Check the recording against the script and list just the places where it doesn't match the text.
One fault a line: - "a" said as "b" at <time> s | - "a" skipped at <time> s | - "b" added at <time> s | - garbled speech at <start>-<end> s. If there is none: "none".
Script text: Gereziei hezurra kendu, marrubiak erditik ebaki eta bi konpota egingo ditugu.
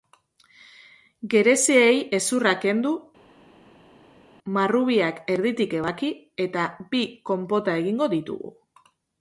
none